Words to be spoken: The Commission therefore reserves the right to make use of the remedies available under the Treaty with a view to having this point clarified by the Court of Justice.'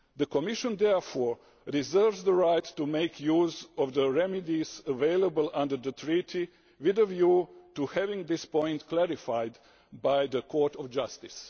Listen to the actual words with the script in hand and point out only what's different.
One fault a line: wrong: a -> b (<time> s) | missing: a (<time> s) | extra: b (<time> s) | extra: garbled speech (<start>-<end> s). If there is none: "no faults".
no faults